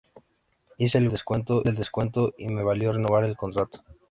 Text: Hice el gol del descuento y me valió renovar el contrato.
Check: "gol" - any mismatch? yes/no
yes